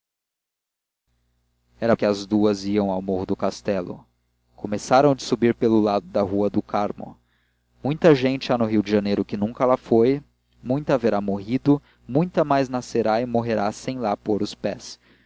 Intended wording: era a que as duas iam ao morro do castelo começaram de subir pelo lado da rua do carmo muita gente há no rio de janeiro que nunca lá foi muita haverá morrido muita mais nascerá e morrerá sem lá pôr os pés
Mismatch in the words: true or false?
false